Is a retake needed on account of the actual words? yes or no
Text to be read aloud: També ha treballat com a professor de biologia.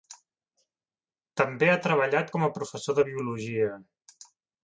no